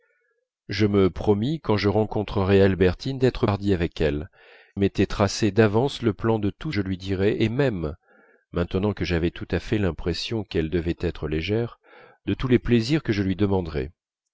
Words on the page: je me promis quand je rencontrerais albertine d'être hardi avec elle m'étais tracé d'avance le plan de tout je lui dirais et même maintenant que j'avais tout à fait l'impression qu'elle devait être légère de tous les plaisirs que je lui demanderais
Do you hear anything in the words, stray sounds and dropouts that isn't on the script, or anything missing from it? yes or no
no